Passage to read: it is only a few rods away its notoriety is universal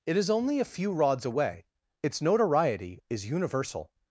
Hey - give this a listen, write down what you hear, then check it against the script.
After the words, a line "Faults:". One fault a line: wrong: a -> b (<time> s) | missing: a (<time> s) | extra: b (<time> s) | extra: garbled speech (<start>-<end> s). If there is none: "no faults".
it is only a few rods away its notoriety is universal
Faults:
no faults